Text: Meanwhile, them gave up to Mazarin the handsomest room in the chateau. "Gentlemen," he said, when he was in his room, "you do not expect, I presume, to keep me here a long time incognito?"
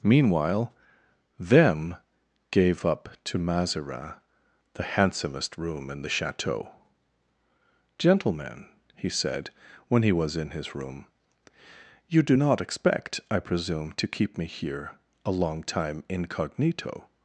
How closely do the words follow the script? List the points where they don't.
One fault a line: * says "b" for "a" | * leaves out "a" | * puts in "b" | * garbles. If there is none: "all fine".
all fine